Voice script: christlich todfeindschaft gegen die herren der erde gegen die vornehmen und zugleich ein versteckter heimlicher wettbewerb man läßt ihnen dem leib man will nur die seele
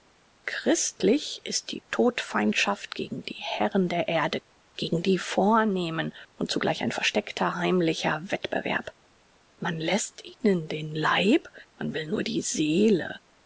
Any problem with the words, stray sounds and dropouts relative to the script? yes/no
yes